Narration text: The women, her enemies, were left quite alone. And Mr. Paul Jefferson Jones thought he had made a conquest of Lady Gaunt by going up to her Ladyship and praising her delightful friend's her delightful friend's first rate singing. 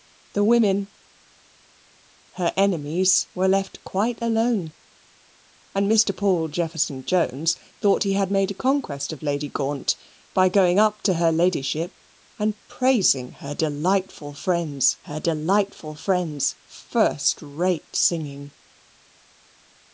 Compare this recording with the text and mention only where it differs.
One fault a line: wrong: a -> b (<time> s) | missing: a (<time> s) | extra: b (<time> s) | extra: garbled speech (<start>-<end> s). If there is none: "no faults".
no faults